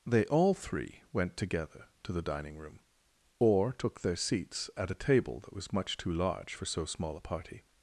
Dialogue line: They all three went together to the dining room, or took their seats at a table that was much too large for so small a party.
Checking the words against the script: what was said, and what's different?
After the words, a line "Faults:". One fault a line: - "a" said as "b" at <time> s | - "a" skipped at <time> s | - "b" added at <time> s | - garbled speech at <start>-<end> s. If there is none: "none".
They all three went together to the dining room, or took their seats at a table that was much too large for so small a party.
Faults:
none